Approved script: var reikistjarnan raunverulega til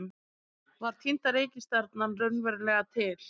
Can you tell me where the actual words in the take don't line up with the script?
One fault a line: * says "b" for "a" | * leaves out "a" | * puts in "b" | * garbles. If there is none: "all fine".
* puts in "týnda"